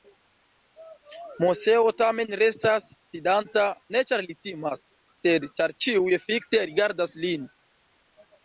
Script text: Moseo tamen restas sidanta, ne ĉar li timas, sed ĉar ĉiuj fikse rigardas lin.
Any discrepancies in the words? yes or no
no